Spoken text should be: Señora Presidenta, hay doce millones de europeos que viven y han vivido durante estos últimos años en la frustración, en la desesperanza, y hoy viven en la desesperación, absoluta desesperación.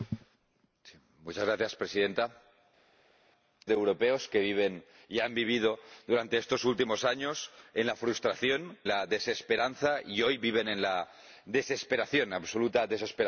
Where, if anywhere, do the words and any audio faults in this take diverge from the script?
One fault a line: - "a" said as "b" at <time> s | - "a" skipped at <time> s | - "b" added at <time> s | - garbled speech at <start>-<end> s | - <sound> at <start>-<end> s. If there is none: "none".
- "hay doce millones" skipped at 2.4 s
- "en" skipped at 8.8 s